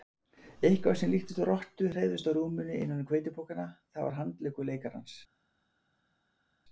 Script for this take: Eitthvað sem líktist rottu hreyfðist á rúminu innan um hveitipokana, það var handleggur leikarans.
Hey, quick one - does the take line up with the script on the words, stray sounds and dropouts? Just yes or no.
yes